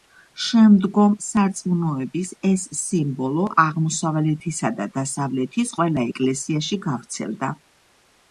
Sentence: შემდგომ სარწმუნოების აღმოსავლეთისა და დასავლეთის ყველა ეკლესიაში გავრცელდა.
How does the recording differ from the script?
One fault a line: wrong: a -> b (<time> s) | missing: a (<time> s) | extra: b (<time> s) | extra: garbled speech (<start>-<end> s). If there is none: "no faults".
extra: ეს სიმბოლო (2.5 s)